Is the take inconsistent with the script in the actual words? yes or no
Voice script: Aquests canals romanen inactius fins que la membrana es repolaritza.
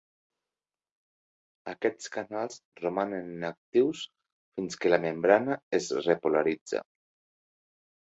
no